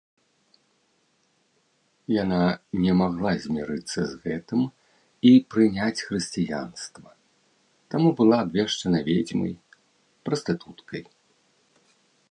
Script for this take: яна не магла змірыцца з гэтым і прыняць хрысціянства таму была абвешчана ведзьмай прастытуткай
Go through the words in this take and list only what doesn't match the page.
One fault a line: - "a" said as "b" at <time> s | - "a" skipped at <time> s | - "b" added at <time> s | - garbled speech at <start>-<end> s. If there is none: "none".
none